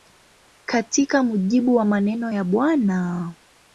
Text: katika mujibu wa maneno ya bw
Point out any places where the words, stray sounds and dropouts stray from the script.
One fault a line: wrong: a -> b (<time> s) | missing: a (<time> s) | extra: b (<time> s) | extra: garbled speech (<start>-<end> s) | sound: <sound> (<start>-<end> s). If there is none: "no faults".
no faults